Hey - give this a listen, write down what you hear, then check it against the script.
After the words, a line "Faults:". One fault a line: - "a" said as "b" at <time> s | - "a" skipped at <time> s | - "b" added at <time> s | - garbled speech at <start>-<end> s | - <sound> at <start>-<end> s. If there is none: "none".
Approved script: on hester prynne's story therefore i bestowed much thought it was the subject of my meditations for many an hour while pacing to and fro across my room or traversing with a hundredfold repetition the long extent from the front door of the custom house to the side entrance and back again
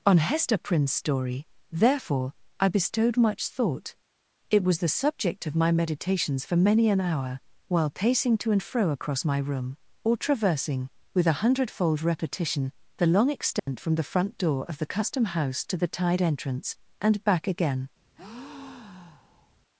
on hester prynne's story therefore i bestowed much thought it was the subject of my meditations for many an hour while pacing to and fro across my room or traversing with a hundredfold repetition the long extent from the front door of the custom house to the tide entrance and back again
Faults:
- dropout at 13.6-13.7 s
- "side" said as "tide" at 15.9 s
- breath at 18.2-19.6 s